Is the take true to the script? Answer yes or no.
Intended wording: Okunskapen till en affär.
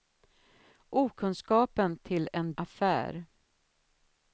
yes